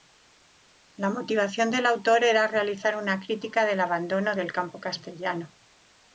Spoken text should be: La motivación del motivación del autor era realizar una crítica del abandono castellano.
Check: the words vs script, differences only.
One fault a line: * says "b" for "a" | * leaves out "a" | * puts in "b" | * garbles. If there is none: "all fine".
* leaves out "motivación del"
* puts in "del campo"